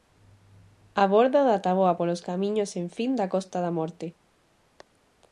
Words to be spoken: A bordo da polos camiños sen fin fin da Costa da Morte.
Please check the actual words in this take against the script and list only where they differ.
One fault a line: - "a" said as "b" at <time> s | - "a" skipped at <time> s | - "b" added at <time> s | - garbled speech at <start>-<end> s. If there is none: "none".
- "táboa" added at 1.6 s
- "fin" skipped at 3.1 s